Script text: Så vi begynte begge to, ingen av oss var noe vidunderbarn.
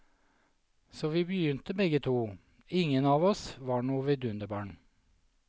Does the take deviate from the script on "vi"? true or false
false